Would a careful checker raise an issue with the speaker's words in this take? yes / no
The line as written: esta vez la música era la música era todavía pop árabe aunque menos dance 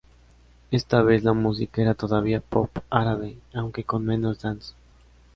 yes